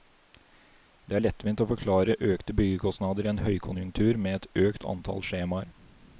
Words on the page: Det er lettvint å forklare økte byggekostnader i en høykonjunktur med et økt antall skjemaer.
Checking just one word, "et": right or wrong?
right